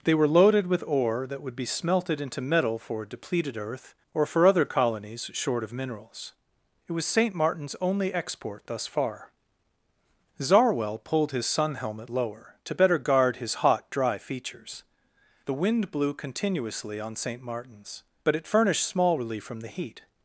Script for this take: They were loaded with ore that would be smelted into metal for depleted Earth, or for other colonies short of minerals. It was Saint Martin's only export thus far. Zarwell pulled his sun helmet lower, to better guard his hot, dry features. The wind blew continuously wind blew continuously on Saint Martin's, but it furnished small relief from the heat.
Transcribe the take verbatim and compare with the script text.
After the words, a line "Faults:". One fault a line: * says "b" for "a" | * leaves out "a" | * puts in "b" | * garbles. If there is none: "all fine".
They were loaded with ore that would be smelted into metal for depleted Earth, or for other colonies short of minerals. It was Saint Martin's only export thus far. Zarwell pulled his sun helmet lower, to better guard his hot, dry features. The wind blew continuously on Saint Martin's, but it furnished small relief from the heat.
Faults:
* leaves out "wind blew continuously"